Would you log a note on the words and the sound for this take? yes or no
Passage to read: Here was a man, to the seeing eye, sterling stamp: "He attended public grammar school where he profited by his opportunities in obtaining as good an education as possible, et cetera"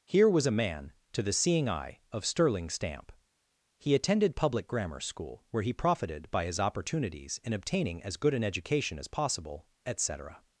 yes